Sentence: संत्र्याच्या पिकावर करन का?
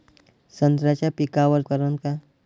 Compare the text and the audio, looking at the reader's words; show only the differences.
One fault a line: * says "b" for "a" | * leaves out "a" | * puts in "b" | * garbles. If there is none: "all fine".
all fine